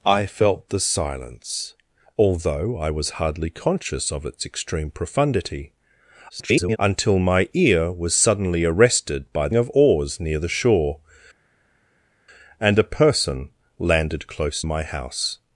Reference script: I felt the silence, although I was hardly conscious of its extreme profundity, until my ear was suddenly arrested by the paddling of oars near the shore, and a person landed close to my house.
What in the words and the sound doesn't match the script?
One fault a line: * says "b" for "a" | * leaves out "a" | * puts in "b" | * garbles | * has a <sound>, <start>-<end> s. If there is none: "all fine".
* garbles
* leaves out "the paddling"
* leaves out "to"